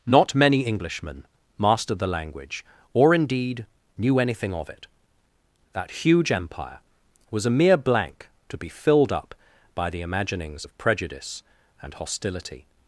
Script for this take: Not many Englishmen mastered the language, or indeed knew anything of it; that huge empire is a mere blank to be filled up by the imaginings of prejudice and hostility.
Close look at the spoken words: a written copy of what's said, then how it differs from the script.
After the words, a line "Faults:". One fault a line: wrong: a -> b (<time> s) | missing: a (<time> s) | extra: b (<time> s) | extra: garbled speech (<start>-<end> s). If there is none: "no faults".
Not many Englishmen mastered the language, or indeed knew anything of it; that huge empire was a mere blank to be filled up by the imaginings of prejudice and hostility.
Faults:
wrong: is -> was (7.3 s)